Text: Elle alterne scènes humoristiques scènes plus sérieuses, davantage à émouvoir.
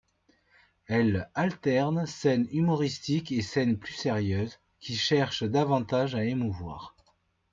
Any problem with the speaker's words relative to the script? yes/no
yes